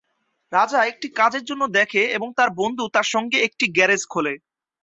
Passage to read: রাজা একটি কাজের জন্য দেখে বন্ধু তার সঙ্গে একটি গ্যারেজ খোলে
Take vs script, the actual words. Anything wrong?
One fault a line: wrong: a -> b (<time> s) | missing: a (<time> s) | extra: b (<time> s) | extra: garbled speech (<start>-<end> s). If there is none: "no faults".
extra: এবং তার (2.2 s)